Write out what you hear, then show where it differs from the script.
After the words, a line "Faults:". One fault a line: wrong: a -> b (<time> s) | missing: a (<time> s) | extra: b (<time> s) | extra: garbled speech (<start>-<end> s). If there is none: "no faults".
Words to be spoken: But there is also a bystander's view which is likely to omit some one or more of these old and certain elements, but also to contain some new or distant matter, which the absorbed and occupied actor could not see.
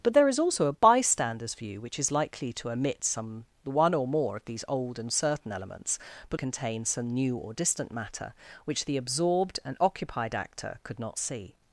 But there is also a bystander's view which is likely to omit some one or more of these old and certain elements, but contain some new or distant matter, which the absorbed and occupied actor could not see.
Faults:
missing: also to (6.4 s)